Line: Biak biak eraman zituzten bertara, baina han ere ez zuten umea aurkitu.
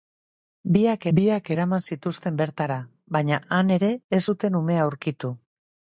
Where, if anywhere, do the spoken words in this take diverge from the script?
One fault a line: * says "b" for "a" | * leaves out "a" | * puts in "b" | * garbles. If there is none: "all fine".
all fine